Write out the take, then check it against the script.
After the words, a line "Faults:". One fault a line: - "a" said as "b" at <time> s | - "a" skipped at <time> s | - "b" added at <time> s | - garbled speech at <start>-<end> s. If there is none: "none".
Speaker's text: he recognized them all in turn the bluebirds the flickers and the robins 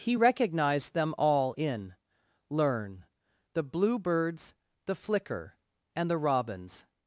he recognized them all in learn the bluebirds the flicker and the robins
Faults:
- "turn" said as "learn" at 2.5 s
- "flickers" said as "flicker" at 4.9 s